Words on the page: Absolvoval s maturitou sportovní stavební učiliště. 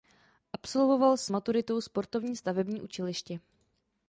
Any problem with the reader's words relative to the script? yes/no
no